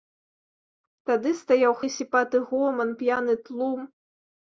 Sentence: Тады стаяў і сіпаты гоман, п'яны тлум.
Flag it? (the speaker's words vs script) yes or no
no